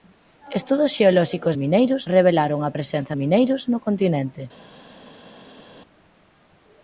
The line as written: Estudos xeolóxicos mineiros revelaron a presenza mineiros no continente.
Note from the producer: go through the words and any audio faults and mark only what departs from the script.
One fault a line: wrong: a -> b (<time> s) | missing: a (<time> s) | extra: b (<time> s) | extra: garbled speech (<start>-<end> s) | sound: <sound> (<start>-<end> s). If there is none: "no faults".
no faults